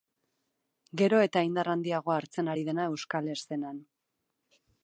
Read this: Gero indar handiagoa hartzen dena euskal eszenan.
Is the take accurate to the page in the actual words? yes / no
no